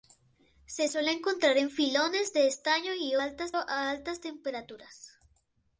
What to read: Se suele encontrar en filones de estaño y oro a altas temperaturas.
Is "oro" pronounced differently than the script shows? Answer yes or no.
yes